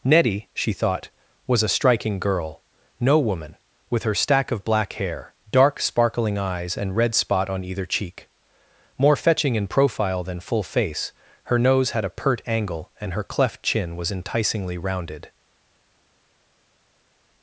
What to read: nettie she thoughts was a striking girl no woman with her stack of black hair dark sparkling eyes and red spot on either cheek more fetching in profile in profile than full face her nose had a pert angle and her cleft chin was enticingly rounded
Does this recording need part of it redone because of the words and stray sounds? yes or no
yes